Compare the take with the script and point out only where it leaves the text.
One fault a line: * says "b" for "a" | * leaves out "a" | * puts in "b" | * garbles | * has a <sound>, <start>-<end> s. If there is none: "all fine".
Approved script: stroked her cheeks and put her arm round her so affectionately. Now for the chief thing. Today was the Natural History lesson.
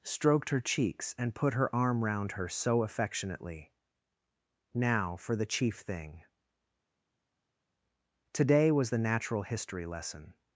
all fine